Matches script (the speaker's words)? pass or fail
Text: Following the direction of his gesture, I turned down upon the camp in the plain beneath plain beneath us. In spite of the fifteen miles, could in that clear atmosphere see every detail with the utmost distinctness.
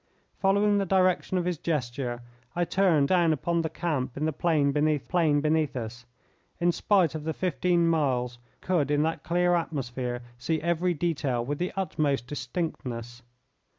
pass